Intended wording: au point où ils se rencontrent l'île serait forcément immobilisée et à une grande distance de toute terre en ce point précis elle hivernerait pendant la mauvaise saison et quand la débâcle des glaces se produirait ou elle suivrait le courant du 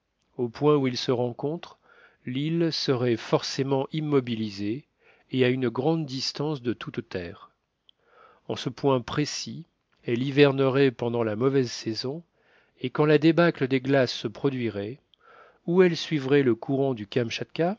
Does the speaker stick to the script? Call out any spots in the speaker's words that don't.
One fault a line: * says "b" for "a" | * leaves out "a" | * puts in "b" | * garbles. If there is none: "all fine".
all fine